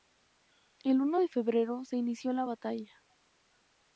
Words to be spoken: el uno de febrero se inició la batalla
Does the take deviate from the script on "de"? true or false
false